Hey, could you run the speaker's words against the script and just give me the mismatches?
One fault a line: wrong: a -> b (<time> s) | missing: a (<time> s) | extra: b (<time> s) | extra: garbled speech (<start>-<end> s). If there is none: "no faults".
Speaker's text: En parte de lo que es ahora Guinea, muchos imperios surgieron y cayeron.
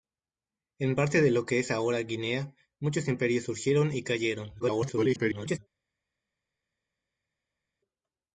extra: garbled speech (4.6-5.6 s)